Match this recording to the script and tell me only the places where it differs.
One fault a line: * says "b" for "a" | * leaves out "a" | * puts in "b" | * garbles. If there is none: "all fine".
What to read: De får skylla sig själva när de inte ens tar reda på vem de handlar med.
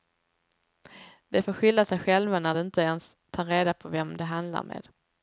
all fine